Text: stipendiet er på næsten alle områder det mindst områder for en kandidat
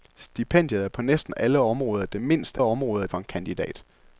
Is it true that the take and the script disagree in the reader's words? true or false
false